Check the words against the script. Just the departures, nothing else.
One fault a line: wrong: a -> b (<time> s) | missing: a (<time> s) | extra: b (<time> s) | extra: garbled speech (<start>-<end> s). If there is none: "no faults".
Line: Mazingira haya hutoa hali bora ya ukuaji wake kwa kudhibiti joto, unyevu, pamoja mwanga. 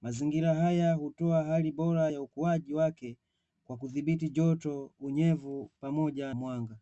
no faults